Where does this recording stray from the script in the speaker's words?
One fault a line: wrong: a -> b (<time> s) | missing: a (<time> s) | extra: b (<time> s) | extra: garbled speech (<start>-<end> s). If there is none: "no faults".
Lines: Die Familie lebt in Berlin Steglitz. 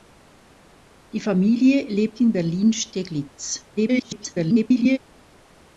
extra: garbled speech (3.8-5.0 s)